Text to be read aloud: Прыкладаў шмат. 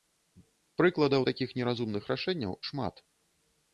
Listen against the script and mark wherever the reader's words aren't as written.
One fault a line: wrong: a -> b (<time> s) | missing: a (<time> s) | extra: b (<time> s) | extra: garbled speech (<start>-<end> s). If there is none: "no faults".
extra: такіх неразумных рашэнняў (1.3 s)